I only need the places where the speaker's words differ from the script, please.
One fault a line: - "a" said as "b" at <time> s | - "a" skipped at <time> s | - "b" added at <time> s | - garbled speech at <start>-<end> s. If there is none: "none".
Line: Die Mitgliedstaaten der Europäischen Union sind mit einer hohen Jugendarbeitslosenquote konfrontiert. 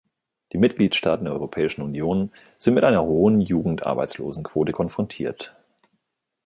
none